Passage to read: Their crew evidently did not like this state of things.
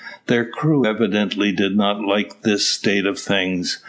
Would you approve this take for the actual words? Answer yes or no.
yes